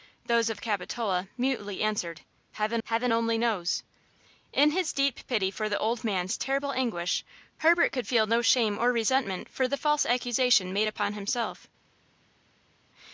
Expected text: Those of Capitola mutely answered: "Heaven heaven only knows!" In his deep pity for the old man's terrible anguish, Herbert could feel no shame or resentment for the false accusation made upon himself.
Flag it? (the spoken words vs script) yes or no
no